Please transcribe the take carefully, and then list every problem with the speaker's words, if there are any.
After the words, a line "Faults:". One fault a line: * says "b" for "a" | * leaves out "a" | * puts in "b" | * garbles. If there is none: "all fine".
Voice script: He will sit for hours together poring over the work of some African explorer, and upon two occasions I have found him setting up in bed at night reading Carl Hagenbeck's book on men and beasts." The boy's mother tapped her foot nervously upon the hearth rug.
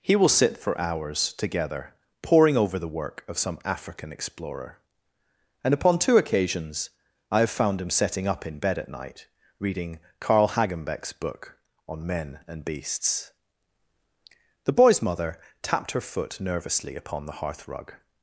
He will sit for hours together poring over the work of some African explorer, and upon two occasions I have found him setting up in bed at night reading Carl Hagenbeck's book on men and beasts." The boy's mother tapped her foot nervously upon the hearth rug.
Faults:
all fine